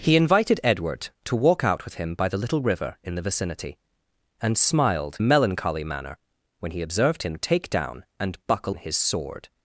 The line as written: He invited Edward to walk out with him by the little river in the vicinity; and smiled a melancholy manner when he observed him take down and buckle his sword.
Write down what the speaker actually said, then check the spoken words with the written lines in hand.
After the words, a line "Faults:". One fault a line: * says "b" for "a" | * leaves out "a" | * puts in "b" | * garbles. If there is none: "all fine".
He invited Edward to walk out with him by the little river in the vicinity; and smiled a melancholy manner when he observed him take down and buckle his sword.
Faults:
all fine